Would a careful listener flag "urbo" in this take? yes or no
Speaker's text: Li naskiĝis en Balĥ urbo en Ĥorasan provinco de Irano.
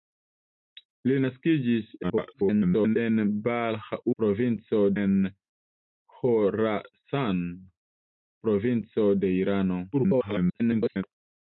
yes